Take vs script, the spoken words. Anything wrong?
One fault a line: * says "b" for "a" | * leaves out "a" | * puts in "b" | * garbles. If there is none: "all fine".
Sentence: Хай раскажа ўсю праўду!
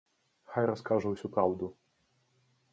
all fine